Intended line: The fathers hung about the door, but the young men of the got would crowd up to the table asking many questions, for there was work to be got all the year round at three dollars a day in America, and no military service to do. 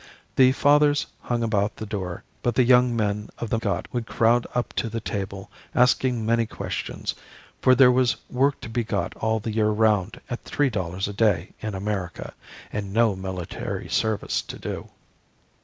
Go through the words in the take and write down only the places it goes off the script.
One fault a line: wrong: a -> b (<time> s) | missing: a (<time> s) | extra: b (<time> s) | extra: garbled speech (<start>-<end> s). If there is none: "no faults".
no faults